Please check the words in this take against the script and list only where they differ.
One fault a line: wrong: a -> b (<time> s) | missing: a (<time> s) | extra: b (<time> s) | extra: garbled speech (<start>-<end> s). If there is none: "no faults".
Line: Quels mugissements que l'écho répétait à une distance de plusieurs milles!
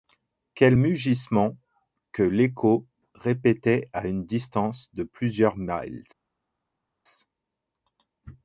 no faults